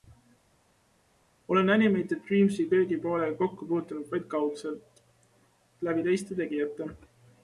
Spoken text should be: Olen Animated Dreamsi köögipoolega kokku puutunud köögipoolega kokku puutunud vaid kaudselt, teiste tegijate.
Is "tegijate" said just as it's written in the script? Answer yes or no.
yes